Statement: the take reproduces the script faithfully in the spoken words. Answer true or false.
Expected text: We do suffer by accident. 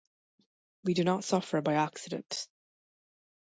false